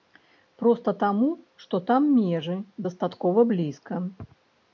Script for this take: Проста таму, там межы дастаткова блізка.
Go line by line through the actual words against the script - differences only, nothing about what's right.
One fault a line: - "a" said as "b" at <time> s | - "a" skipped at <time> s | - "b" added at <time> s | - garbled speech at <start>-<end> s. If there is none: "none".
- "што" added at 1.6 s